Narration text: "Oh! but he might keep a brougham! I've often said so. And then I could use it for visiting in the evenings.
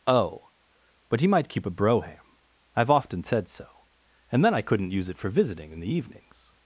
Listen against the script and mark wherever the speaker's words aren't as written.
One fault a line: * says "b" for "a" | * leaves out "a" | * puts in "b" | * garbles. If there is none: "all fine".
* says "couldn't" for "could"